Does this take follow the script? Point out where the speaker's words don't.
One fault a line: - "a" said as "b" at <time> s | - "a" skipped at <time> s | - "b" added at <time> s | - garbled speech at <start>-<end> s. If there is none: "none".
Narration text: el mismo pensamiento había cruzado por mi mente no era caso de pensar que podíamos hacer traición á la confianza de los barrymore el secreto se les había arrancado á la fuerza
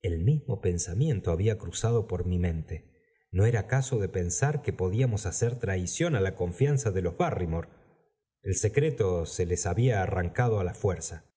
none